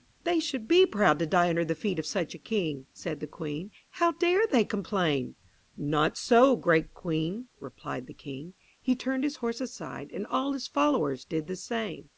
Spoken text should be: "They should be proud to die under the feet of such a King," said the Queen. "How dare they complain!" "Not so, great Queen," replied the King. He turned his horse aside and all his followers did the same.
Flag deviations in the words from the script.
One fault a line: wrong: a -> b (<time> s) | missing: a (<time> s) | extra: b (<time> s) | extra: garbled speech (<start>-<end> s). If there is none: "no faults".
no faults